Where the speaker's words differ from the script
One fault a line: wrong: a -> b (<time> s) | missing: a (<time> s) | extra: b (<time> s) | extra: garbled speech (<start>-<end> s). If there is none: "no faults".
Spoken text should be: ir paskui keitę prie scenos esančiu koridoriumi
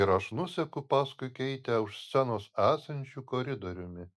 extra: aš nuseku (0.1 s)
wrong: prie -> už (1.9 s)